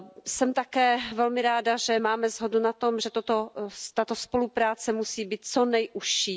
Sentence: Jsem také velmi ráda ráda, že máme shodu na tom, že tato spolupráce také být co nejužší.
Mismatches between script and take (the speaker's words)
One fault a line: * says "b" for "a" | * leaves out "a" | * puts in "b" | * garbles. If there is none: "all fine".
* leaves out "ráda"
* says "musí" for "také"